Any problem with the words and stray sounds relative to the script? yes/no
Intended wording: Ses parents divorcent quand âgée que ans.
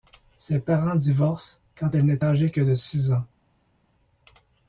yes